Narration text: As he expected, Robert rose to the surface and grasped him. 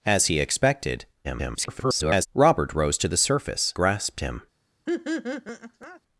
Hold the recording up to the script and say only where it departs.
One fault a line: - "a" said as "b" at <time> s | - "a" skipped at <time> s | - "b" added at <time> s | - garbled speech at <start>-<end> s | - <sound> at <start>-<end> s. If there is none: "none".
- garbled speech at 1.2-2.3 s
- "and" skipped at 3.7 s
- laugh at 4.9-6.0 s